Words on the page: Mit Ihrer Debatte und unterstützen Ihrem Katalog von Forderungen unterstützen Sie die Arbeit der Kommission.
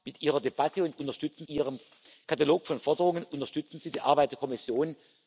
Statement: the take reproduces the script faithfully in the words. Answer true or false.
true